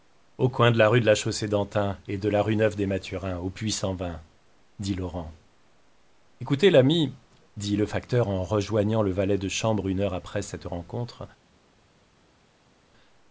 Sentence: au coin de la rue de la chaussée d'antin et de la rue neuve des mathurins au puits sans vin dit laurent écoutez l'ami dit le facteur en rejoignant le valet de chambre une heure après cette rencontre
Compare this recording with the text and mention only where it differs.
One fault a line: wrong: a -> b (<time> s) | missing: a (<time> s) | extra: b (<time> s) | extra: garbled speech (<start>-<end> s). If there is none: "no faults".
no faults